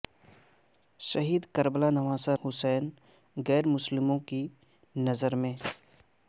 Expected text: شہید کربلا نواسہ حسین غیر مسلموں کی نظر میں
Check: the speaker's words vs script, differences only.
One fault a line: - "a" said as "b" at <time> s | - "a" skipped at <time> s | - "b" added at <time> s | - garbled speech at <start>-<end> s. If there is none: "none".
none